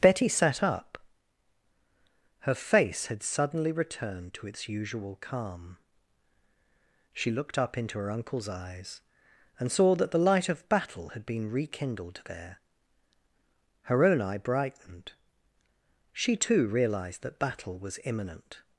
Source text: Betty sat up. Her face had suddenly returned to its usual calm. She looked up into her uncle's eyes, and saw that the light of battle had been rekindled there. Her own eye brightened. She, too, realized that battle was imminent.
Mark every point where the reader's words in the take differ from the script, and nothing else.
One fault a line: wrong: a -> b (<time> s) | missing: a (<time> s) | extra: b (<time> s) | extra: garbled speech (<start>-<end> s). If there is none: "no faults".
no faults